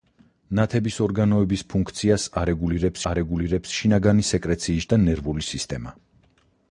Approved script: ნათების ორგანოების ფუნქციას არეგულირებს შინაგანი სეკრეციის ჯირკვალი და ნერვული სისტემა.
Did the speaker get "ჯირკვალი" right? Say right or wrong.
wrong